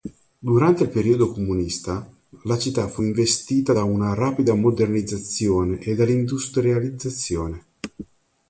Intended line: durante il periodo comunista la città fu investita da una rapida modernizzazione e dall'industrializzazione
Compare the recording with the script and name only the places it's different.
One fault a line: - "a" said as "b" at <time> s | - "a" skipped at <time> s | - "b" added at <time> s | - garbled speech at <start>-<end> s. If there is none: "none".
none